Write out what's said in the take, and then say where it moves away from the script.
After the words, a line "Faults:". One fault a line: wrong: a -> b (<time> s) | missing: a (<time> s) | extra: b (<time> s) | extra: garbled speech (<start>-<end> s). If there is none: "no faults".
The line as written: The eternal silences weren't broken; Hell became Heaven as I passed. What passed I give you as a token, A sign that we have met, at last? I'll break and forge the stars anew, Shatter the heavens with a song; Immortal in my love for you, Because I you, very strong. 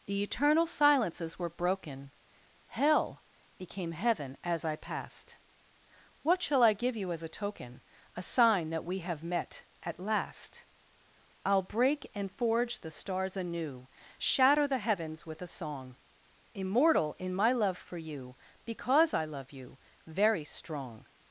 The eternal silences were broken; Hell became Heaven as I passed. What shall I give you as a token, A sign that we have met, at last? I'll break and forge the stars anew, Shatter the heavens with a song; Immortal in my love for you, Because I love you, very strong.
Faults:
wrong: weren't -> were (1.4 s)
wrong: passed -> shall (6.4 s)
extra: love (19.2 s)